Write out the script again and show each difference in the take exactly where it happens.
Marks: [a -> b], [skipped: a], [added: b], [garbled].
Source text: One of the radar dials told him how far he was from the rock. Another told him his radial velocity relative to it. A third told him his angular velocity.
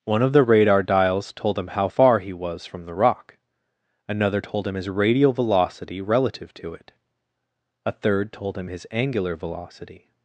One of the radar dials told him how far he was from the rock. Another told him his radial velocity relative to it. A third told him his angular velocity.